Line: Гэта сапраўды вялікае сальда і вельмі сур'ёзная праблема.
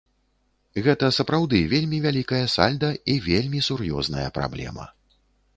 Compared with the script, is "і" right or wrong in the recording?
right